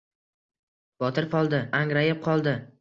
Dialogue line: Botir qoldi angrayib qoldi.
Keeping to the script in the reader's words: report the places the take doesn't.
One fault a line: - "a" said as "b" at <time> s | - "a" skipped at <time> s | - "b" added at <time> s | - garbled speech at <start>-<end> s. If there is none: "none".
none